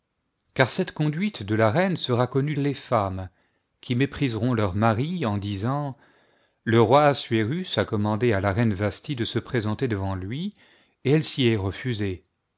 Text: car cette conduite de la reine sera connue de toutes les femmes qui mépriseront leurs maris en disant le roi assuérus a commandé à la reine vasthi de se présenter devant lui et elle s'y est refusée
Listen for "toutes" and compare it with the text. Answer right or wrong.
wrong